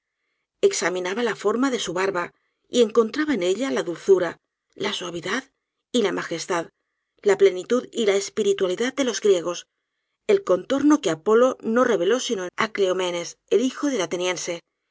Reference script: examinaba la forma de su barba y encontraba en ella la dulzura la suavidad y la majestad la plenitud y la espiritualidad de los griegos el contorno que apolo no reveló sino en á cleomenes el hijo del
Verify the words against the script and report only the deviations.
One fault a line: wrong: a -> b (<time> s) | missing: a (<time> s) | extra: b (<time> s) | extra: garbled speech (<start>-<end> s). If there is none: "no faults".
no faults